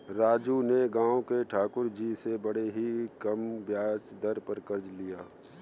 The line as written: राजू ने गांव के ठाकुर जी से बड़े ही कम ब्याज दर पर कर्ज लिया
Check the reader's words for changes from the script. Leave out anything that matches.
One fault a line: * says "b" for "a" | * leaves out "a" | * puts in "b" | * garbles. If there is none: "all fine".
all fine